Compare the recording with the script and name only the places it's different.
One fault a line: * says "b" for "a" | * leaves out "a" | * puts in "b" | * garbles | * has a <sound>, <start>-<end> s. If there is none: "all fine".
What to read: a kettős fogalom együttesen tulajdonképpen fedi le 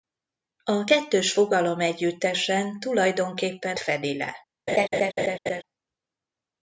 * has a laugh, 4.7-5.6 s